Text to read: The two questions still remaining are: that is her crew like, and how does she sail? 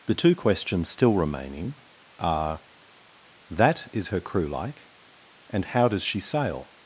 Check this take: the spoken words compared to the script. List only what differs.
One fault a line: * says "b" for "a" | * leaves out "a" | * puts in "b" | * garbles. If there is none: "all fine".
all fine